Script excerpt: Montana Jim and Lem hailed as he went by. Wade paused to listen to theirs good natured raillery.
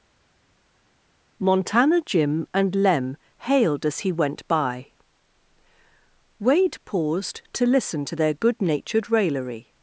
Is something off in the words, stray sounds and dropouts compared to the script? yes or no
yes